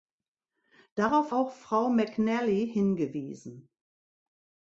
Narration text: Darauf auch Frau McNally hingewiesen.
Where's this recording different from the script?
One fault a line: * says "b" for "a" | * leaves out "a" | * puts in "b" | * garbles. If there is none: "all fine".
all fine